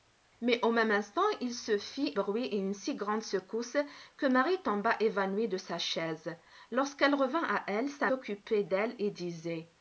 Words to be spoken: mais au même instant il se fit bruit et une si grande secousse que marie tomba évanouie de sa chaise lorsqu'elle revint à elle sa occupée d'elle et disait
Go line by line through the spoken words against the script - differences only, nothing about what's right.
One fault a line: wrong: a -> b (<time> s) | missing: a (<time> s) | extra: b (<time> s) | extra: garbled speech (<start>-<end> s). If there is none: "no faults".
no faults